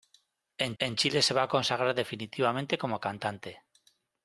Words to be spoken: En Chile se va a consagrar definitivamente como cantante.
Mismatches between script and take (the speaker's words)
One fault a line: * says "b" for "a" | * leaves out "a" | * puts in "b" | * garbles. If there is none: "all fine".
* puts in "en"